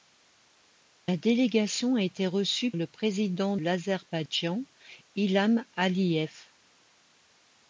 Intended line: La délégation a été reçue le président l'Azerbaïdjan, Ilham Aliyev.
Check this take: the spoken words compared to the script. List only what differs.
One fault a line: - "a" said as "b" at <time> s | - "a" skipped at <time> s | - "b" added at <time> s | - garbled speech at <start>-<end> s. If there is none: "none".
none